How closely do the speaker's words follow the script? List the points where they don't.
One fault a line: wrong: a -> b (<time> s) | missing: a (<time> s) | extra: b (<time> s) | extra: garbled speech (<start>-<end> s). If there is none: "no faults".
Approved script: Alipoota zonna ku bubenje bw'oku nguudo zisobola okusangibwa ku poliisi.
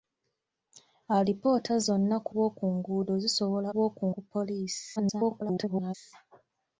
missing: bubenje (2.3 s)
wrong: okusangibwa -> bw'oku (3.7 s)
extra: garbled speech (5.0-5.9 s)